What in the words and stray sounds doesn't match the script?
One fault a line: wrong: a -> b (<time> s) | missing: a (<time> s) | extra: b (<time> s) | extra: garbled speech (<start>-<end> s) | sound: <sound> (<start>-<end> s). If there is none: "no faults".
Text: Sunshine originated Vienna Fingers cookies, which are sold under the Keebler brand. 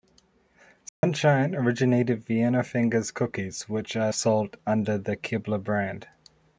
sound: dropout (0.9-1.0 s)